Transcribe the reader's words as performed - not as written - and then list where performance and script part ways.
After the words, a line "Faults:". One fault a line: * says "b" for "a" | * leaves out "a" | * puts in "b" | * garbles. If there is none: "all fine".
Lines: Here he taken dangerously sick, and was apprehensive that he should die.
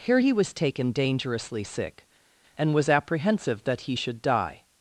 Here he was taken dangerously sick, and was apprehensive that he should die.
Faults:
* puts in "was"